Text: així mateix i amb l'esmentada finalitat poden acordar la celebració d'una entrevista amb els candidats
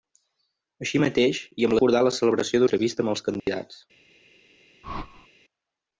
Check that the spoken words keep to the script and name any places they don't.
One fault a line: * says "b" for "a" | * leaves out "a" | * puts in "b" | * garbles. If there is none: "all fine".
* leaves out "l'esmentada finalitat poden"
* leaves out "d'una"